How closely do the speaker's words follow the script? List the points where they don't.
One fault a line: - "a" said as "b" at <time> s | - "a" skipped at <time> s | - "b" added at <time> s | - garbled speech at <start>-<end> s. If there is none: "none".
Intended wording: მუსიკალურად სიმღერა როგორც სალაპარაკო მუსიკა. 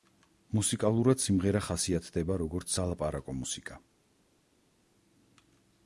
- "ხასიათდება" added at 1.7 s